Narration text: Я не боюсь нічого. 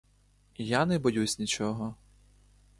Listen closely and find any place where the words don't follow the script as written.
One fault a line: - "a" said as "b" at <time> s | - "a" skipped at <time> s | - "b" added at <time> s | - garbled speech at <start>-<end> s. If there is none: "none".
none